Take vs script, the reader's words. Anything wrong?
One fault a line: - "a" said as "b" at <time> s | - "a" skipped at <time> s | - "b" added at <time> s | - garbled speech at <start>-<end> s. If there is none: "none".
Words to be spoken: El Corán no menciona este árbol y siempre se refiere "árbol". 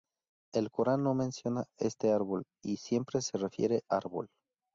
none